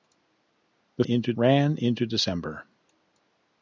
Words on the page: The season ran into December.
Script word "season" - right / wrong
wrong